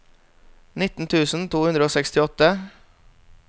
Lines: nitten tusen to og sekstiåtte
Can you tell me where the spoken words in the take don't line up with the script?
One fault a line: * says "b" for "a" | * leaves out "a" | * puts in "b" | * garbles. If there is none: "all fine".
* puts in "hundre"